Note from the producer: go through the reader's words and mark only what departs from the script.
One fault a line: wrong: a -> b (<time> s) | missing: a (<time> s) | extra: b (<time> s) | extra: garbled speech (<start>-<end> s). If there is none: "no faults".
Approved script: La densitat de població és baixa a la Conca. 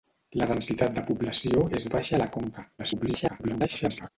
extra: garbled speech (2.8-4.1 s)